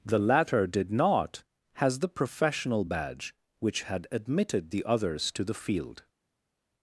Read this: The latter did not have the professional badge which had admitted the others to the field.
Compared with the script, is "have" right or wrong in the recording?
wrong